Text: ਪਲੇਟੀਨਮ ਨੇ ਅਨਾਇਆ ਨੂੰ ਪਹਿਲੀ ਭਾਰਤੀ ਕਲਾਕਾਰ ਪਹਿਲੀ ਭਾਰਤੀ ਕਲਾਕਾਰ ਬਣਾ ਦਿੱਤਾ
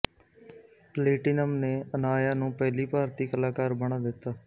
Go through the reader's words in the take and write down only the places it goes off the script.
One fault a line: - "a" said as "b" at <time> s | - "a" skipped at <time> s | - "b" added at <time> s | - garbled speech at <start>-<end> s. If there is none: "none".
- "ਪਹਿਲੀ ਭਾਰਤੀ ਕਲਾਕਾਰ" skipped at 3.7 s